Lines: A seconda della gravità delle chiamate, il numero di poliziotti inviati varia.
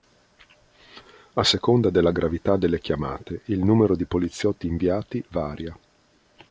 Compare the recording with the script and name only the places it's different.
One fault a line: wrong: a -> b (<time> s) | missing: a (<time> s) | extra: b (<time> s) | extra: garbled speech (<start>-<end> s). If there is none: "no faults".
no faults